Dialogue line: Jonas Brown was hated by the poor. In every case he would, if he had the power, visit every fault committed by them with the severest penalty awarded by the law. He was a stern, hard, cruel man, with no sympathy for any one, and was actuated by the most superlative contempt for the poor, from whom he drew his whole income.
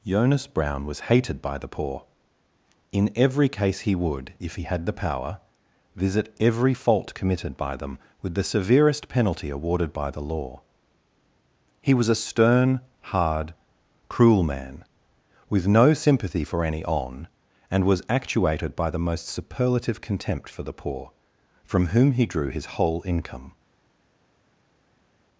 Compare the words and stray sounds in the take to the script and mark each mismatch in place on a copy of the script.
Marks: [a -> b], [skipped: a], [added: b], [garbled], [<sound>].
Jonas Brown was hated by the poor. In every case he would, if he had the power, visit every fault committed by them with the severest penalty awarded by the law. He was a stern, hard, cruel man, with no sympathy for any [one, -> on] and was actuated by the most superlative contempt for the poor, from whom he drew his whole income.